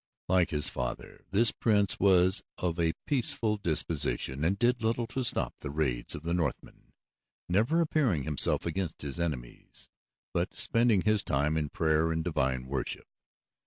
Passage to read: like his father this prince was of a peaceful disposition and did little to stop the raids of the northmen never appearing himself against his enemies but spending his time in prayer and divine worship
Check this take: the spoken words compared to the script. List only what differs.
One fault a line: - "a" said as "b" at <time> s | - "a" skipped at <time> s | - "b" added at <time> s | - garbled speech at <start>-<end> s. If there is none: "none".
none